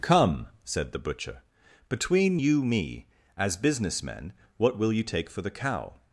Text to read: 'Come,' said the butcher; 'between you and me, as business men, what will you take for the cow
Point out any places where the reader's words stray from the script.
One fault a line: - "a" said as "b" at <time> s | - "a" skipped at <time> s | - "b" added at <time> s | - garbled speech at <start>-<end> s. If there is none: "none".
- "and" skipped at 2.6 s